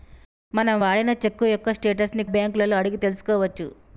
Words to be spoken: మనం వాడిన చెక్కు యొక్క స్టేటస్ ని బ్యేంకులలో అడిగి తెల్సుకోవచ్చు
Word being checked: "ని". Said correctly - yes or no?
yes